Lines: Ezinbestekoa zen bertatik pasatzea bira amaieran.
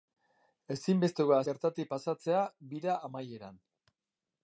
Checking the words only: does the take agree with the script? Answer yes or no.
no